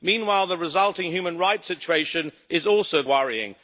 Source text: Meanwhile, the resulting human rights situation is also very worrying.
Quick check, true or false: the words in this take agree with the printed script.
false